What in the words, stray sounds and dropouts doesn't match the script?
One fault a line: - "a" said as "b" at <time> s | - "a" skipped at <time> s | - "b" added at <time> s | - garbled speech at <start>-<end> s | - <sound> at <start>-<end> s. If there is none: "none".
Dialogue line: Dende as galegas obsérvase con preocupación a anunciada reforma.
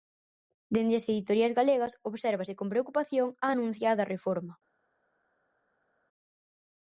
- "editoriais" added at 1.1 s